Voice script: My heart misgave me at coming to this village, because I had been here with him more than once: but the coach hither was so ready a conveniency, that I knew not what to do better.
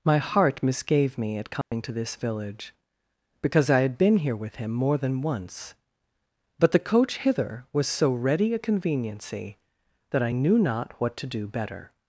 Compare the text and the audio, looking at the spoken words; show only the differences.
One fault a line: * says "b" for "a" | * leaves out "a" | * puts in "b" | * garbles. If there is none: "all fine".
all fine